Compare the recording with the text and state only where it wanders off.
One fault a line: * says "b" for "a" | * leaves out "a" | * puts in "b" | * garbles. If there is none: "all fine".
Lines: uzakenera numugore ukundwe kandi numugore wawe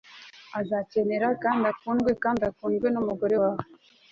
* says "kandi" for "numugore"
* puts in "ukundwe"